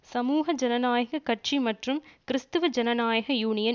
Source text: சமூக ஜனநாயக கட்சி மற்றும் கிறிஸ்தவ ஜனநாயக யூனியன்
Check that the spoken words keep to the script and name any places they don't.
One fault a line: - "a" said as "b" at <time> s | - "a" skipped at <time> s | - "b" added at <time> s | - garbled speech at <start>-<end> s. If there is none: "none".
none